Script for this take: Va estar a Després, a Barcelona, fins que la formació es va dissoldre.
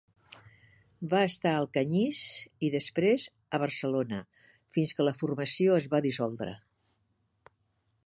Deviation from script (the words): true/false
true